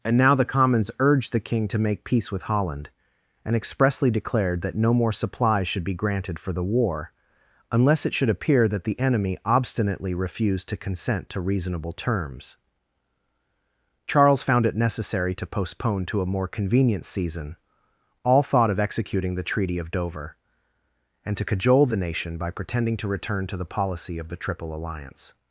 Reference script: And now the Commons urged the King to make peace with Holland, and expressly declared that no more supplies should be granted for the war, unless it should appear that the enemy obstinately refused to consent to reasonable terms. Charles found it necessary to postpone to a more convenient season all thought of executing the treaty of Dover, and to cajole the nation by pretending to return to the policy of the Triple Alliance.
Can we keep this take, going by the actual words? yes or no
yes